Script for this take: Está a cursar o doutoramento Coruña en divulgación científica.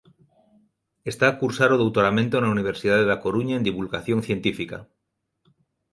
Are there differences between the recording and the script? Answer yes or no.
yes